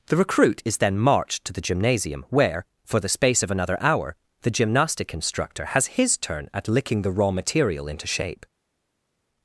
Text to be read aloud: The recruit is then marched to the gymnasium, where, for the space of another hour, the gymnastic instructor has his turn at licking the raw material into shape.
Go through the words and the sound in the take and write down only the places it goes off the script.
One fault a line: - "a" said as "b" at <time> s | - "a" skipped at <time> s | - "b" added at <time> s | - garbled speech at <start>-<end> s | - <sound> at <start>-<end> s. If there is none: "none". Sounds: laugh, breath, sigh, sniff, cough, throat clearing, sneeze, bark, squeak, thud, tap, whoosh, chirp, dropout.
none